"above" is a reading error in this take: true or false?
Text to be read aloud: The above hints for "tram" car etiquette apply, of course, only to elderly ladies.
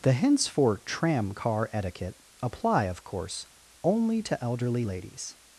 true